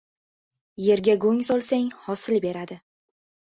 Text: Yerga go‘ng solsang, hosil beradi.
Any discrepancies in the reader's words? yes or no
no